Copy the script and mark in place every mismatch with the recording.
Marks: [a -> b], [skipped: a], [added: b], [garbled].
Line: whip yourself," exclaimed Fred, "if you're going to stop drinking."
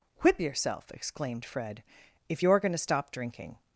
whip yourself," exclaimed Fred, "if you're going to stop drinking."